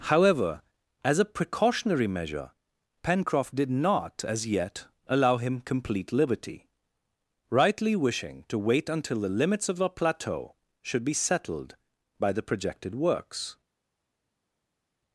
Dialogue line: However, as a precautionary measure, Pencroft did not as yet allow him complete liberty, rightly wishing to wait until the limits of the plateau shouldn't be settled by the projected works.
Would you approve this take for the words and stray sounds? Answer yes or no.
no